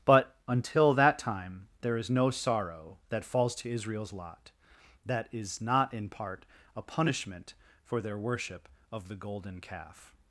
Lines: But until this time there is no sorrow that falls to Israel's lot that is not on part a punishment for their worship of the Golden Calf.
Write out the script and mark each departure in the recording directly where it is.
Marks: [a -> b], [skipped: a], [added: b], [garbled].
But until [this -> that] time there is no sorrow that falls to Israel's lot that is not [on -> in] part a punishment for their worship of the Golden Calf.